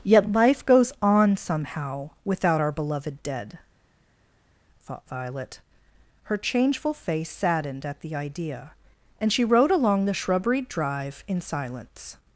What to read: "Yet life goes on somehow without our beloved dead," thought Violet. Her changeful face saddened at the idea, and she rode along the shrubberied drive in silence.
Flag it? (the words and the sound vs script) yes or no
no